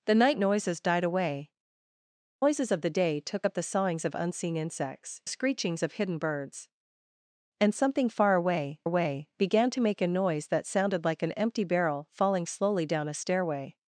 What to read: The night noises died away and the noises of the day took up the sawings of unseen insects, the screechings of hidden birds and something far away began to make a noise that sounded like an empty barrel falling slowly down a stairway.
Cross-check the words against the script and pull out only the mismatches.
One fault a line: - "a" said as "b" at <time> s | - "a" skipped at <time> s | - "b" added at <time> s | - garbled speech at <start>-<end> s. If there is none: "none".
- "and the" skipped at 1.5 s
- "the" skipped at 5.2 s
- "away" added at 8.8 s